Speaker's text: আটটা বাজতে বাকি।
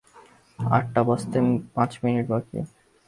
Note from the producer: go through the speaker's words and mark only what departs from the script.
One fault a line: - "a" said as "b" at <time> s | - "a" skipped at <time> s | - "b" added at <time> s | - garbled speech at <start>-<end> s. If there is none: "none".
- "পাঁচ মিনিট" added at 1.7 s